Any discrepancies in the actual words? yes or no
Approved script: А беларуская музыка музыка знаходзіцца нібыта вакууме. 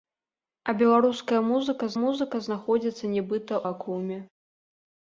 no